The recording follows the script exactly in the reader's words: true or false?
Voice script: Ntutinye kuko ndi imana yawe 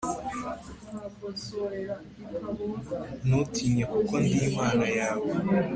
true